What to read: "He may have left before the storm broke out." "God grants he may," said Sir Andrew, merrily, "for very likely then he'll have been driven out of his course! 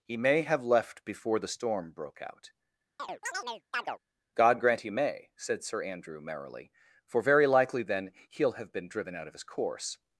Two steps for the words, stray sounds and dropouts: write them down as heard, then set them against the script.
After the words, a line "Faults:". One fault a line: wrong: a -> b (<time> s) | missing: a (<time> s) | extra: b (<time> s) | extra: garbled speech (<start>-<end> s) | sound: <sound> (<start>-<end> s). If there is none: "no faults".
"He may have left before the storm broke out." "God grant he may," said Sir Andrew, merrily, "for very likely then he'll have been driven out of his course!
Faults:
sound: chirp (3.0-4.0 s)
wrong: grants -> grant (4.6 s)